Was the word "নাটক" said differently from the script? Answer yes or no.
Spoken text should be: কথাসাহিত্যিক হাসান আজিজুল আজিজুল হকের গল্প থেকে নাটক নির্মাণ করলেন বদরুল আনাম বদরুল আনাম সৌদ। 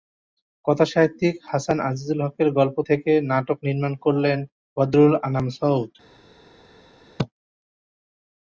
no